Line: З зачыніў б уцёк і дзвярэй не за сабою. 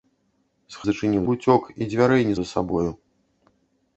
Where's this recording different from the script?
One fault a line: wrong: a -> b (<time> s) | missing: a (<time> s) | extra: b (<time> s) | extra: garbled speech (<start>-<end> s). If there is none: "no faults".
no faults